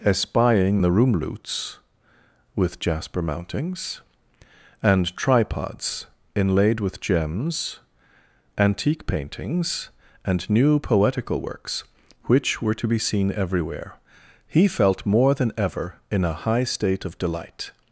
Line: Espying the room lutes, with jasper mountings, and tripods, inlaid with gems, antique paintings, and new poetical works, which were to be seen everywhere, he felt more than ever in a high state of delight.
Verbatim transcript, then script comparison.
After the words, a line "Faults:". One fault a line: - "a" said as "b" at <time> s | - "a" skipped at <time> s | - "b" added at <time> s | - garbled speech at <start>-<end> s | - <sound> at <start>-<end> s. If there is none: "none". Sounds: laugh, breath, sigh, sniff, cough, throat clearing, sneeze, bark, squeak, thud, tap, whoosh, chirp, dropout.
Espying the room lutes, with jasper mountings, and tripods, inlaid with gems, antique paintings, and new poetical works, which were to be seen everywhere, he felt more than ever in a high state of delight.
Faults:
none